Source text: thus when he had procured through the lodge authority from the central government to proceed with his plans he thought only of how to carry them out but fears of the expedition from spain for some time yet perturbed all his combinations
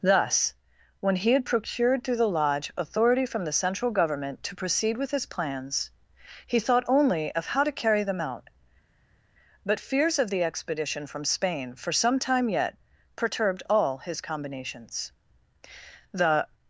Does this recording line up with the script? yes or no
no